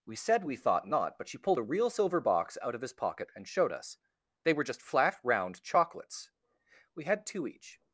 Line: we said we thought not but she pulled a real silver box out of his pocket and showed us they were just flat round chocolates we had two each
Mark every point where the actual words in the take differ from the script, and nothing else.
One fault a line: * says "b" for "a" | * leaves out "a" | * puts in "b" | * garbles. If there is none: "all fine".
all fine